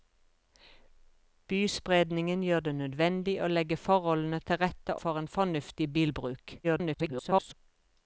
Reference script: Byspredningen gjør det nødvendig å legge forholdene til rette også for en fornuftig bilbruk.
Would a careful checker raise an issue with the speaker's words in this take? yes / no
yes